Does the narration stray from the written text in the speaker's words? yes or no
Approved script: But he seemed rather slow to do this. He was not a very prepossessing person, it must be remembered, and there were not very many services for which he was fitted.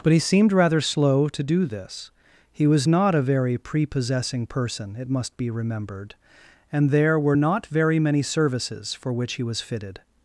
no